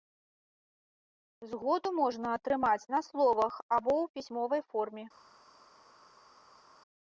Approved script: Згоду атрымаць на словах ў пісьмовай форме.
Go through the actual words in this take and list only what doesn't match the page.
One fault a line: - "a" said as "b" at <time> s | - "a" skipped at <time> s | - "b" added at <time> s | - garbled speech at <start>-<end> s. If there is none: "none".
- "можна" added at 2.0 s
- "або" added at 3.8 s